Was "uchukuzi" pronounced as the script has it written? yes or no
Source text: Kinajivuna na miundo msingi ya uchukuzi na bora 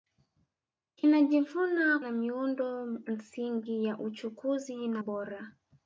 yes